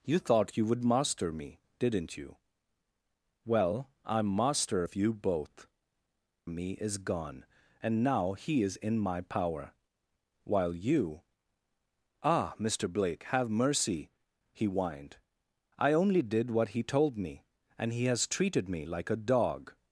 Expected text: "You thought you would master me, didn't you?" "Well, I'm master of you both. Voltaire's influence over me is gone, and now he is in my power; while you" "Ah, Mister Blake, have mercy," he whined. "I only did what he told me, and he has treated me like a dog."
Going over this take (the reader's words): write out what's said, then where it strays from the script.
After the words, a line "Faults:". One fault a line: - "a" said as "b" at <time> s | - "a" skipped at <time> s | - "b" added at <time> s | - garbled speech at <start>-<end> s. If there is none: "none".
"You thought you would master me, didn't you?" "Well, I'm master of you both. Me is gone, and now he is in my power; while you" "Ah, Mister Blake, have mercy," he whined. "I only did what he told me, and he has treated me like a dog."
Faults:
- "Voltaire's influence over" skipped at 5.7 s